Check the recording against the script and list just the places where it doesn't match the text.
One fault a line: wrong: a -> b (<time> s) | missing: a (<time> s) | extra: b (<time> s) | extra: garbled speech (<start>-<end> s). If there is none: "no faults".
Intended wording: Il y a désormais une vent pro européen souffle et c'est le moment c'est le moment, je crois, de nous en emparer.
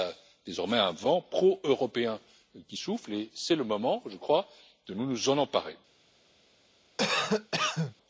wrong: une -> un (0.8 s)
extra: qui (2.7 s)
missing: c'est le moment (4.0 s)